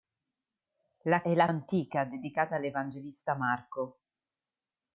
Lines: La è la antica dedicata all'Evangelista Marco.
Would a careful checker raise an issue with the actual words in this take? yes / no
no